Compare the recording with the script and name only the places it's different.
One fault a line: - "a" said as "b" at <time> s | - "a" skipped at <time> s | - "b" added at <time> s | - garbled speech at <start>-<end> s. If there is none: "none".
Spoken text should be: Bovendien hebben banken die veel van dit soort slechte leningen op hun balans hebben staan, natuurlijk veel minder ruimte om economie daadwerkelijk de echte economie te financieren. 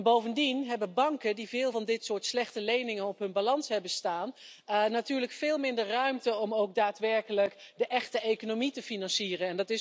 - "economie" said as "ook" at 6.5 s